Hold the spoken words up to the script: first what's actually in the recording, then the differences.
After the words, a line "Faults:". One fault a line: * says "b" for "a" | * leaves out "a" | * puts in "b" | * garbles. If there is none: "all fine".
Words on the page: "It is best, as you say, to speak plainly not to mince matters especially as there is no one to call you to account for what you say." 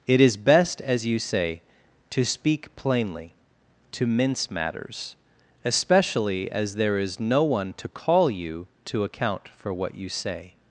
"It is best, as you say, to speak plainly to mince matters especially as there is no one to call you to account for what you say."
Faults:
* leaves out "not"